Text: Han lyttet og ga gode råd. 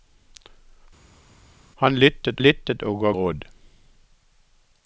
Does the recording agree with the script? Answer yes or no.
no